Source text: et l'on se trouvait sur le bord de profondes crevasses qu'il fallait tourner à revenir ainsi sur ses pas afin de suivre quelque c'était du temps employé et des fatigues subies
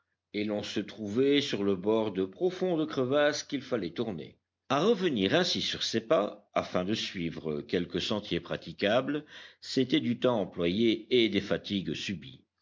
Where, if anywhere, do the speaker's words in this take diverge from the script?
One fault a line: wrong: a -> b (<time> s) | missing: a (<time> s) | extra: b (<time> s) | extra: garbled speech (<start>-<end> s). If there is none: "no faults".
extra: sentier praticable (8.0 s)